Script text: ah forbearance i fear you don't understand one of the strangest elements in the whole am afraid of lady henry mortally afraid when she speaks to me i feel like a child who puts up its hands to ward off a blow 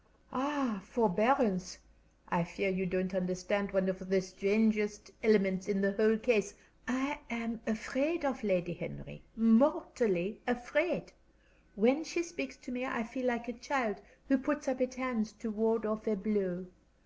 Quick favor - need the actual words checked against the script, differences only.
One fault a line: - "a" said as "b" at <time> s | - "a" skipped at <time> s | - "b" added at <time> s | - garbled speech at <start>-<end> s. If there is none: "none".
- "case i" added at 6.2 s